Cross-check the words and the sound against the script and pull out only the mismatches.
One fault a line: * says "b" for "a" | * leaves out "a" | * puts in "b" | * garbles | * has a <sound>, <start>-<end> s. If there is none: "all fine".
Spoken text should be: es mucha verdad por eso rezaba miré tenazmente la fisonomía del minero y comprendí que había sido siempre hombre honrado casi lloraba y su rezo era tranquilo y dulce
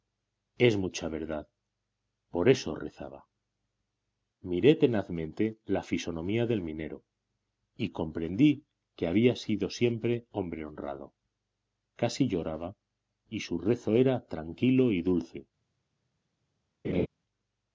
* has a laugh, 16.8-17.1 s